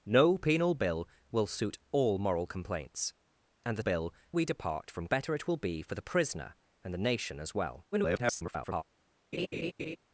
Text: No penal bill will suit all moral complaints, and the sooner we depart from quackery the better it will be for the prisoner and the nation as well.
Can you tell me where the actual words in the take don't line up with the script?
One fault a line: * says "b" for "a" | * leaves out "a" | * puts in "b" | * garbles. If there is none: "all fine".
* says "bill" for "sooner"
* leaves out "quackery the"
* garbles